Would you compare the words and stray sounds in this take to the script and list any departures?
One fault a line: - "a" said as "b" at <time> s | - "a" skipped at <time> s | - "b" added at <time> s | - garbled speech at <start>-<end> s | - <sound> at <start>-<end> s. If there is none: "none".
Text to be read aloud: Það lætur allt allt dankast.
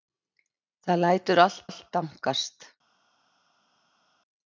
none